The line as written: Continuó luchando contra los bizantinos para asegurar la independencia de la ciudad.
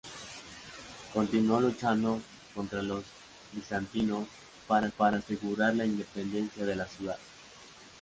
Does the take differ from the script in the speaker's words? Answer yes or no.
yes